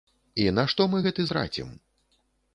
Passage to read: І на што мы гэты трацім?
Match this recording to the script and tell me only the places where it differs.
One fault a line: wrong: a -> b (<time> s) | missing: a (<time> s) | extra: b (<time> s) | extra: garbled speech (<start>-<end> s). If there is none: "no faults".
no faults